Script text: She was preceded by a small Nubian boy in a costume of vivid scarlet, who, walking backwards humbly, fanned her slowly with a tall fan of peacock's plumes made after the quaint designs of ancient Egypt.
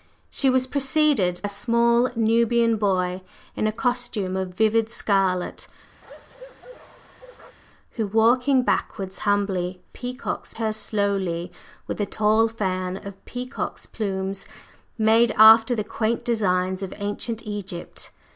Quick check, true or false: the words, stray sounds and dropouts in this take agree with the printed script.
false